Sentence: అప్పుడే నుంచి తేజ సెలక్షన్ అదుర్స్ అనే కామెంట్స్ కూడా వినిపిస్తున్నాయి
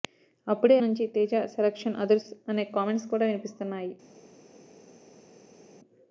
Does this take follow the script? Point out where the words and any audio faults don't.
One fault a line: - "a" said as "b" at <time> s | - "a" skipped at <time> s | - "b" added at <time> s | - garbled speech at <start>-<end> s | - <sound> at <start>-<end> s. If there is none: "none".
none